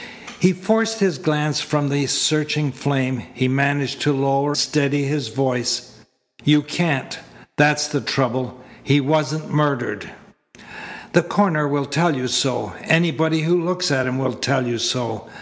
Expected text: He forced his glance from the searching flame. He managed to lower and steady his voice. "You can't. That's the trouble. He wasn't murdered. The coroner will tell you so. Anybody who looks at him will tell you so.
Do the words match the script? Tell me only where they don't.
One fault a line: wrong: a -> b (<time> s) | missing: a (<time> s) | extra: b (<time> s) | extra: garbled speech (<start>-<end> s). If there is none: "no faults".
missing: and (4.5 s)